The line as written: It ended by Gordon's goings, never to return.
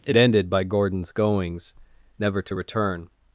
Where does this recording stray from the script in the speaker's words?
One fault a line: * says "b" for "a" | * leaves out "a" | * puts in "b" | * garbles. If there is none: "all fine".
all fine